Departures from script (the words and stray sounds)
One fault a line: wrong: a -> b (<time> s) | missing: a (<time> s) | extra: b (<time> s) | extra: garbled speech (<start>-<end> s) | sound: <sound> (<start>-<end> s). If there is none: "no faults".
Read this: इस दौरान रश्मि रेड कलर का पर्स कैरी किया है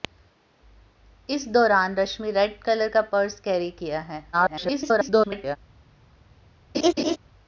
extra: garbled speech (4.3-5.6 s)
sound: laugh (6.7-7.2 s)